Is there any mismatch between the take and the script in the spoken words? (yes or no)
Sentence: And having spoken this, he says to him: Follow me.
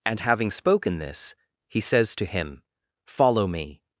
no